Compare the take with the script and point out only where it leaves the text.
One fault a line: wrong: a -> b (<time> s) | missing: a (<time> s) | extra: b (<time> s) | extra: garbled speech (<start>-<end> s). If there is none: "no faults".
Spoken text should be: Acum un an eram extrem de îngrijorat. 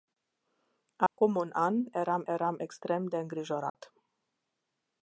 extra: eram (2.2 s)